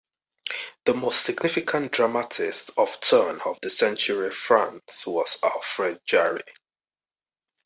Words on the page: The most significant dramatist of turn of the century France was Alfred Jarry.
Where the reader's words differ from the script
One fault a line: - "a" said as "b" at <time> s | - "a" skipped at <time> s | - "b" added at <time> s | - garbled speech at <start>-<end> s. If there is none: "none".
none